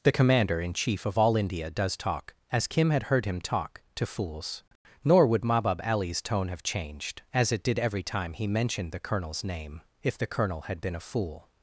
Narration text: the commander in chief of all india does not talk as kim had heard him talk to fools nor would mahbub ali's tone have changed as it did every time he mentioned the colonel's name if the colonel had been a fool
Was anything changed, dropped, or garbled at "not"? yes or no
yes